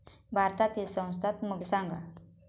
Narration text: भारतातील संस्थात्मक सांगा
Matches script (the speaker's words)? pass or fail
pass